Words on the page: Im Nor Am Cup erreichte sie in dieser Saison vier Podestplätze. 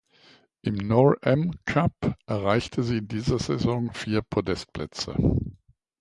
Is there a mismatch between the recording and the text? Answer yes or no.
no